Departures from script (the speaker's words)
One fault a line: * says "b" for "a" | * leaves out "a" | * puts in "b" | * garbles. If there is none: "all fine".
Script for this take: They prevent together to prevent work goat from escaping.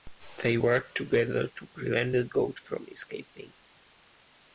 * says "work" for "prevent"
* says "the" for "work"